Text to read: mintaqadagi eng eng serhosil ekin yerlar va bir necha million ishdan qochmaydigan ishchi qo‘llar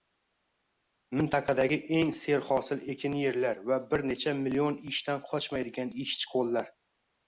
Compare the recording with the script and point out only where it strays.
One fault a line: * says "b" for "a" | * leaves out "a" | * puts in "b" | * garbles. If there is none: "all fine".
* leaves out "eng"